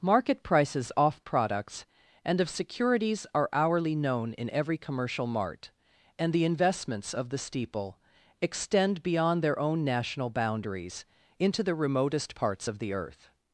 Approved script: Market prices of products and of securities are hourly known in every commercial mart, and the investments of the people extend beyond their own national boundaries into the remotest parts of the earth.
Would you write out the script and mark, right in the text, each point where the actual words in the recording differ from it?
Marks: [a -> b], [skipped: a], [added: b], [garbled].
Market prices [of -> off] products and of securities are hourly known in every commercial mart, and the investments of the [people -> steeple] extend beyond their own national boundaries into the remotest parts of the earth.